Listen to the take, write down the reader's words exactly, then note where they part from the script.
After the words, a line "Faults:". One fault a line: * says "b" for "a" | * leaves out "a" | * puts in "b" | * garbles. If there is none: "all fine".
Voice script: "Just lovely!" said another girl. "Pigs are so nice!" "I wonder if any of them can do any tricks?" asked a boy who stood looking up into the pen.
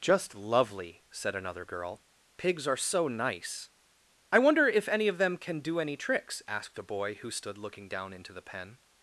"Just lovely!" said another girl. "Pigs are so nice!" "I wonder if any of them can do any tricks?" asked a boy who stood looking down into the pen.
Faults:
* says "down" for "up"